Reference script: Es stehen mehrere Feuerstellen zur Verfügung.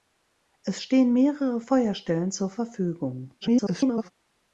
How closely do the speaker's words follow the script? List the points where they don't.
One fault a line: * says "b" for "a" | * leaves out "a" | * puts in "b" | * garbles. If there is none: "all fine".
* garbles